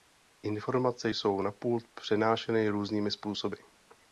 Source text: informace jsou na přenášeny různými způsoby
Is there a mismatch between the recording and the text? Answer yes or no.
yes